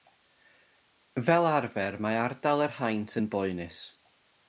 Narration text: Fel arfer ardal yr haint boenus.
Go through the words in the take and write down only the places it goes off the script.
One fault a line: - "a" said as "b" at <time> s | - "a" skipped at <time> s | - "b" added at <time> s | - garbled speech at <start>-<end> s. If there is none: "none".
- "mae" added at 2.1 s
- "yn" added at 3.2 s